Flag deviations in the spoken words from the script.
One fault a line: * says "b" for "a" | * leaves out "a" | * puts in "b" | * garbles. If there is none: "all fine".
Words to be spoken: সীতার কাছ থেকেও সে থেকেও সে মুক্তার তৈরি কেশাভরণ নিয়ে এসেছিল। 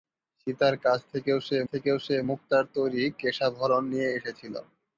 all fine